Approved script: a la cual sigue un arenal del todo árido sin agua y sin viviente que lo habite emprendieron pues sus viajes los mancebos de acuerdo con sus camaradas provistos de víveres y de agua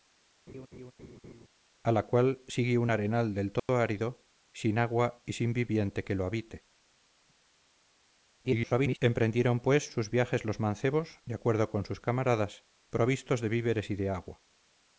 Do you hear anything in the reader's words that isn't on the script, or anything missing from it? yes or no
yes